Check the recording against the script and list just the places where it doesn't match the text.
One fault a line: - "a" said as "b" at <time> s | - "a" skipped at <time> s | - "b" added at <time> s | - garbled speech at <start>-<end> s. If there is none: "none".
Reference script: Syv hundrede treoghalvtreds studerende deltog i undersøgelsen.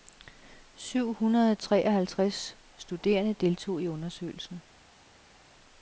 none